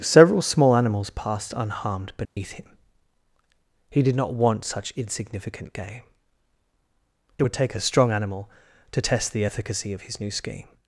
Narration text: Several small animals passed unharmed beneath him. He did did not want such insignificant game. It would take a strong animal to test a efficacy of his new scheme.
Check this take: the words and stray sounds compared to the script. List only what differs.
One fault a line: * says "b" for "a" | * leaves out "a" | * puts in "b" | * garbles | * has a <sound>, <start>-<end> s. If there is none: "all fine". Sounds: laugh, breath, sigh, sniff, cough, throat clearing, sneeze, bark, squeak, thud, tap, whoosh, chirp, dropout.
* has a dropout, 2.2-2.4 s
* leaves out "did"
* says "the" for "a"